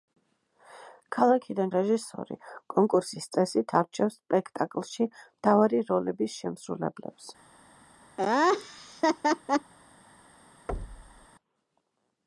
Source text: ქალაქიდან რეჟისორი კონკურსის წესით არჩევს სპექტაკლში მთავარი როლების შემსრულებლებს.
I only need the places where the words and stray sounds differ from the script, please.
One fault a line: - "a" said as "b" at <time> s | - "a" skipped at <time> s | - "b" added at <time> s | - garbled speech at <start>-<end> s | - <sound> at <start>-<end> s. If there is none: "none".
- laugh at 8.2-9.7 s
- thud at 10.7-11.3 s